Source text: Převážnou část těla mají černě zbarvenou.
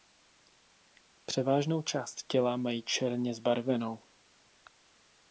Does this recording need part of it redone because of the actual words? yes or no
no